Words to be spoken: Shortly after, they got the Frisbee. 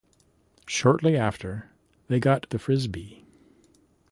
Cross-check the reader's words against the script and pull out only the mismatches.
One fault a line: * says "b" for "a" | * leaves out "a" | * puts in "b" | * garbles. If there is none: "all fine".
all fine